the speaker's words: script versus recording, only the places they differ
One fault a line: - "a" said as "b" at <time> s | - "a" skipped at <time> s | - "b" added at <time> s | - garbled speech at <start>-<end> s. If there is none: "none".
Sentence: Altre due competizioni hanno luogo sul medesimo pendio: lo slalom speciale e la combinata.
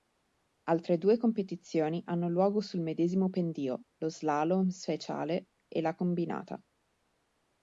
none